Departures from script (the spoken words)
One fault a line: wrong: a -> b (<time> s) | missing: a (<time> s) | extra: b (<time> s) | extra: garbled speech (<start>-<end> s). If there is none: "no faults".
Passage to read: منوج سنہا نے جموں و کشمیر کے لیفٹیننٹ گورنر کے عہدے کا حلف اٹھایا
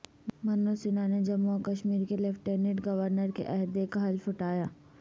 no faults